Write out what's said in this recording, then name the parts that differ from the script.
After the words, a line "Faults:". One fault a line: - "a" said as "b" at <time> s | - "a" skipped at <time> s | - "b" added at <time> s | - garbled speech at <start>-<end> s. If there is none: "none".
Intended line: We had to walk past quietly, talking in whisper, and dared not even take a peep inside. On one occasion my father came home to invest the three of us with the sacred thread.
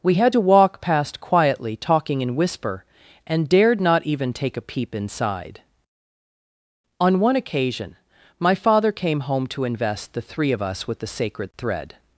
We had to walk past quietly, talking in whisper, and dared not even take a peep inside. On one occasion my father came home to invest the three of us with the sacred thread.
Faults:
none